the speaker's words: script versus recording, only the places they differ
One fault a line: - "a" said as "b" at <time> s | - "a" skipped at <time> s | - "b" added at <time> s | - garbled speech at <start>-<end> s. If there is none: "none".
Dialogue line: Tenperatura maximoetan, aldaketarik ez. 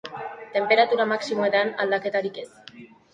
none